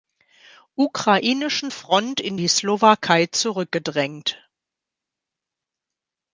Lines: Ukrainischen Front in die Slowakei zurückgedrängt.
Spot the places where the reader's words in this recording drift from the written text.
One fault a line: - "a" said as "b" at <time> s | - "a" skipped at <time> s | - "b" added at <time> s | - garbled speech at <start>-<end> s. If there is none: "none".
none